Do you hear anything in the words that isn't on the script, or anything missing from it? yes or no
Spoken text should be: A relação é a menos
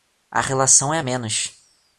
no